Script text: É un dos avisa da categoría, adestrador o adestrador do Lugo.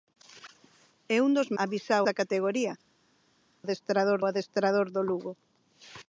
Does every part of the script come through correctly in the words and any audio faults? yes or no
yes